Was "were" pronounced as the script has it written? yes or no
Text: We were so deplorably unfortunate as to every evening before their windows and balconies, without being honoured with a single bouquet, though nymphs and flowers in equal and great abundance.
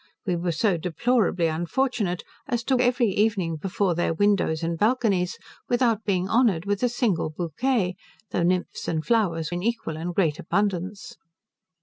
yes